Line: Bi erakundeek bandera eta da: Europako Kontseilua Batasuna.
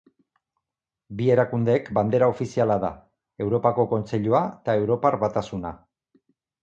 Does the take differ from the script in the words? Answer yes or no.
yes